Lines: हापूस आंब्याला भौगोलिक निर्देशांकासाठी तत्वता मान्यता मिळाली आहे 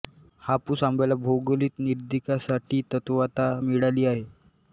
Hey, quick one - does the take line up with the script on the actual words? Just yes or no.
no